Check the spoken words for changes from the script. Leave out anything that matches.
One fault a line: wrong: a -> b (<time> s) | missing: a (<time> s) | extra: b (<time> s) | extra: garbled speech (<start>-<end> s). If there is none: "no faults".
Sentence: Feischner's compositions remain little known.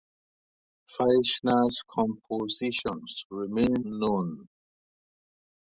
missing: little (3.7 s)